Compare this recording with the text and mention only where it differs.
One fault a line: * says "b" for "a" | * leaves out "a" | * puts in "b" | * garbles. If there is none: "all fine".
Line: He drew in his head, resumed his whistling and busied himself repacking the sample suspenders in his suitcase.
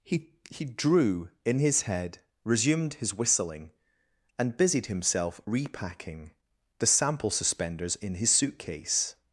* puts in "he"